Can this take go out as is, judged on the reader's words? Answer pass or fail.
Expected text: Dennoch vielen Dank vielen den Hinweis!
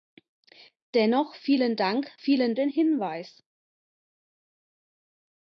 pass